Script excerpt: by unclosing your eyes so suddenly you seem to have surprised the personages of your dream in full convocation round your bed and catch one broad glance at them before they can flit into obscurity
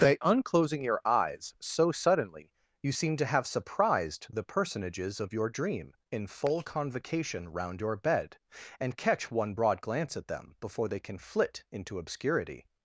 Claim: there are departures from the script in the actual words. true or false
false